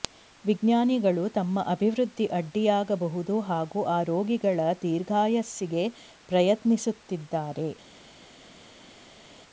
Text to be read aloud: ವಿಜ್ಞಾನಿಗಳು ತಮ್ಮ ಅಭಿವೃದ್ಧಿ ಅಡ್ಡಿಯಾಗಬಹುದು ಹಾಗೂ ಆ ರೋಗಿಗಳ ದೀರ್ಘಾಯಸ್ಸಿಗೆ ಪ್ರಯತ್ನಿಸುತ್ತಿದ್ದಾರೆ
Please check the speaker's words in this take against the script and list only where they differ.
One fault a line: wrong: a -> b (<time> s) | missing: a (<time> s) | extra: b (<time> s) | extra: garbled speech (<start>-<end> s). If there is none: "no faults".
no faults